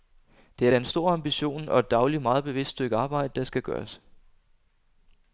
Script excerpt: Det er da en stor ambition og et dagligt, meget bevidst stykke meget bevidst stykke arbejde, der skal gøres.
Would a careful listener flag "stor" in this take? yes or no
no